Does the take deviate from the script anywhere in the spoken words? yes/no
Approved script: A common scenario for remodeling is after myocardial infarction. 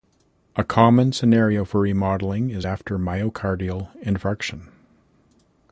no